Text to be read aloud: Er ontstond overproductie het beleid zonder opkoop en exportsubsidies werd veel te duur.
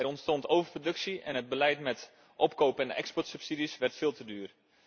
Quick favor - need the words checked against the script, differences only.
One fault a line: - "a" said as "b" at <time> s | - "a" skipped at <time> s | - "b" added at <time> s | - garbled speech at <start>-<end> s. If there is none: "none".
- "en" added at 1.2 s
- "zonder" said as "met" at 1.8 s